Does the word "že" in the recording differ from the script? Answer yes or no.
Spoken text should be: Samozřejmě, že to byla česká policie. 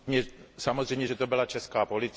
no